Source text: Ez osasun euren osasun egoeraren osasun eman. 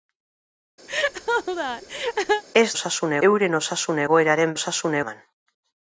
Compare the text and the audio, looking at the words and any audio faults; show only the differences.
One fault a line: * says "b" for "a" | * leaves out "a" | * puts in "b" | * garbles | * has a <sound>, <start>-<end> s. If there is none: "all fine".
* has a laugh, 0.9-2.4 s